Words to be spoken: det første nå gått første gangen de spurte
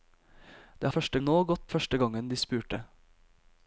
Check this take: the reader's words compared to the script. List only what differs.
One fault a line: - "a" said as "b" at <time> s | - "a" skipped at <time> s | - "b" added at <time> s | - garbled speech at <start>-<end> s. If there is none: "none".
none